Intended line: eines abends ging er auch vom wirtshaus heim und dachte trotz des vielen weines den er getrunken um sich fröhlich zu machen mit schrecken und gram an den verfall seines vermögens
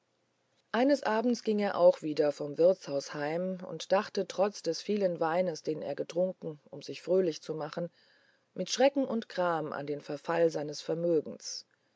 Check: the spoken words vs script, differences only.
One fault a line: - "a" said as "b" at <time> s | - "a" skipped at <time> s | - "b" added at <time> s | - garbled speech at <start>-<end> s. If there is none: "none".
- "wieder" added at 2.0 s